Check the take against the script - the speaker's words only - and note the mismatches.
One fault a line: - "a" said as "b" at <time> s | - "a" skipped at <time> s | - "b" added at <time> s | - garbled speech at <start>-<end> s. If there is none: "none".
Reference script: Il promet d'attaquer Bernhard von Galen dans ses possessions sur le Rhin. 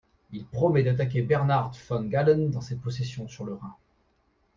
none